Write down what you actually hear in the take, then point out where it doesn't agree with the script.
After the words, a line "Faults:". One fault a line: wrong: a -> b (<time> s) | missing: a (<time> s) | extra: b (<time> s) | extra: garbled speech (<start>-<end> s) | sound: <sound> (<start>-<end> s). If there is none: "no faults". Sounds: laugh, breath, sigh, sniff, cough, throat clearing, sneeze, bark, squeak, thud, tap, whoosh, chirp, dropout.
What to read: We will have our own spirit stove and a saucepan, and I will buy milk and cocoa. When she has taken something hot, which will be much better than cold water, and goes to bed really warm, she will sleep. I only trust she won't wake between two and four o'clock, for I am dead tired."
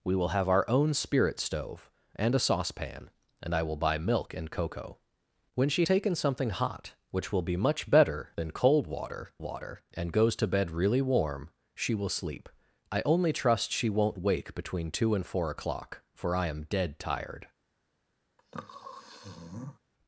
We will have our own spirit stove and a saucepan, and I will buy milk and cocoa. When she taken something hot, which will be much better than cold water water, and goes to bed really warm, she will sleep. I only trust she won't wake between two and four o'clock, for I am dead tired."
Faults:
missing: has (5.8 s)
extra: water (9.4 s)
sound: sniff (18.4-19.8 s)